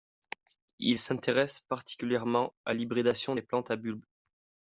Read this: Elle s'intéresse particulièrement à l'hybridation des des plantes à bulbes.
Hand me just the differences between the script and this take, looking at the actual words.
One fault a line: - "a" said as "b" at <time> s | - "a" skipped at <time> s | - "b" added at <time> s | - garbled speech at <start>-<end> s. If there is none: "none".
- "Elle" said as "Il" at 0.8 s
- "des" skipped at 3.4 s